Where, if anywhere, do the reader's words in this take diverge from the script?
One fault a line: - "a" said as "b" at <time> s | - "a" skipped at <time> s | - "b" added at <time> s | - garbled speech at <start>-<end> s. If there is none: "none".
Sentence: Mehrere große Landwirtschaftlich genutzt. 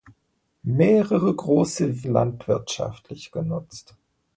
none